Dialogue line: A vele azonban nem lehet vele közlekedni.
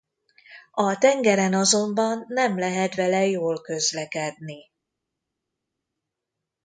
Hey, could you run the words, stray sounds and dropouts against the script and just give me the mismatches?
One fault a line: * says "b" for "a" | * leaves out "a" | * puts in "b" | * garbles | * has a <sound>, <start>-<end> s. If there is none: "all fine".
* says "tengeren" for "vele"
* puts in "jól"